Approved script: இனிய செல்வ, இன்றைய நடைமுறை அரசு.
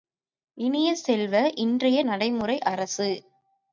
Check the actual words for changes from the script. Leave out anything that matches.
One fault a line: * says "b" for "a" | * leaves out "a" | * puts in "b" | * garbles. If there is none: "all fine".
all fine